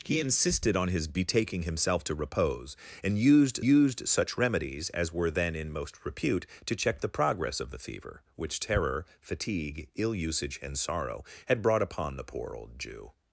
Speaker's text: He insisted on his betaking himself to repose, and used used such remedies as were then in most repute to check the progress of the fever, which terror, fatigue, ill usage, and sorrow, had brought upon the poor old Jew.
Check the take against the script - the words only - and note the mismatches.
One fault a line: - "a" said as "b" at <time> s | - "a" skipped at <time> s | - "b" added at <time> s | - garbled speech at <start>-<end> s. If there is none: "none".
none